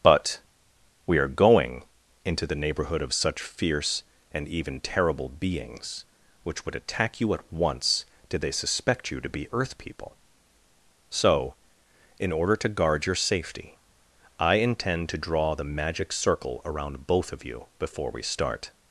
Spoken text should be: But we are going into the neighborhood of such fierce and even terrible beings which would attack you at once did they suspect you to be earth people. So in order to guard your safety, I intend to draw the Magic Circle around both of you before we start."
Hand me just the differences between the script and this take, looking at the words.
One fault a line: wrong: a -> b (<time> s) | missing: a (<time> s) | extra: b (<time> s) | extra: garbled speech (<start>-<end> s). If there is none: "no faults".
no faults